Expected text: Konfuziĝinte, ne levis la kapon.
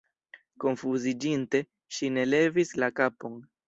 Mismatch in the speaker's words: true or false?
true